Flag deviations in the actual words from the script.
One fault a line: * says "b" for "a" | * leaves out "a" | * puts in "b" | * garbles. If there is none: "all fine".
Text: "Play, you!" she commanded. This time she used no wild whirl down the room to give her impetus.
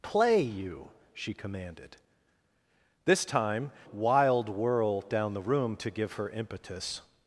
* leaves out "she used no"